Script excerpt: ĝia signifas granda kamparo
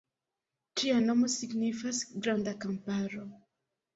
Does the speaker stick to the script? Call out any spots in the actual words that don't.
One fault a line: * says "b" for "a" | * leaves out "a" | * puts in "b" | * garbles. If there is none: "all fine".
* puts in "nomo"